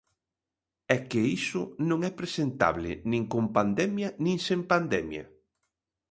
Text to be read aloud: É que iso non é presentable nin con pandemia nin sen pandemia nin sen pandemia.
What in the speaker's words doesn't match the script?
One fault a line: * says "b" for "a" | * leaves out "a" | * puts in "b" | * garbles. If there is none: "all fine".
* leaves out "nin sen pandemia"